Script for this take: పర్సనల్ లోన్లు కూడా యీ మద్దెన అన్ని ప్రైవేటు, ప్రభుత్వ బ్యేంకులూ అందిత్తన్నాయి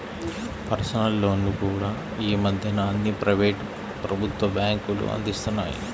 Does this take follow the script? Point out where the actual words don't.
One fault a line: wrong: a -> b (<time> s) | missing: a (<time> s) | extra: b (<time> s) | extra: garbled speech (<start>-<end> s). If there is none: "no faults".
no faults